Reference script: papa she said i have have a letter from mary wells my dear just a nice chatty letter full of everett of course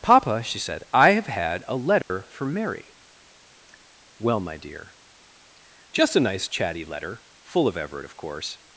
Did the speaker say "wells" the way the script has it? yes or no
no